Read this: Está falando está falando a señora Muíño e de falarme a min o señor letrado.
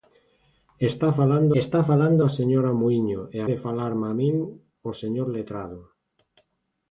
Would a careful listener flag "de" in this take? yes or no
no